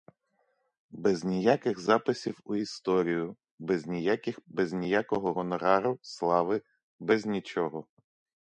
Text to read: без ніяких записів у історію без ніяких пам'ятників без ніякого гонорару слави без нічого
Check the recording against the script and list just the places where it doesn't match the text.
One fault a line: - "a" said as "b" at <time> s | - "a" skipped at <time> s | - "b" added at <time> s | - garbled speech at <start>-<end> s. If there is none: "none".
- "пам'ятників" skipped at 4.4 s